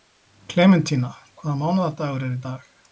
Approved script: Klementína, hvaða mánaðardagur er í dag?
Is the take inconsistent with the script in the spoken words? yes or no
no